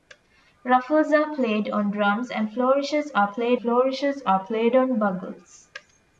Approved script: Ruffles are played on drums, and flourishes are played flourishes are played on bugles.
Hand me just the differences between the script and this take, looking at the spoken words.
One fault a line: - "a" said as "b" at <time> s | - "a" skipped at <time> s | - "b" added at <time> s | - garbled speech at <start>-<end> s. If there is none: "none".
none